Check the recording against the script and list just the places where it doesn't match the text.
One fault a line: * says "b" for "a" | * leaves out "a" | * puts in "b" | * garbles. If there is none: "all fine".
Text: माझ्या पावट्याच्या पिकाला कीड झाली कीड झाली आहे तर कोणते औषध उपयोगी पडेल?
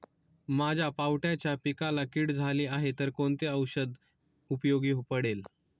* leaves out "कीड झाली"